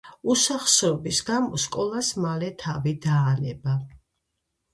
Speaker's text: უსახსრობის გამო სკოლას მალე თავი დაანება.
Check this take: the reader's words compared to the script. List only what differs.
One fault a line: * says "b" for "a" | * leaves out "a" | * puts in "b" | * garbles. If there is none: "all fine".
all fine